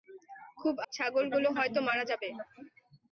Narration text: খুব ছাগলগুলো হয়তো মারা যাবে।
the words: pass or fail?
pass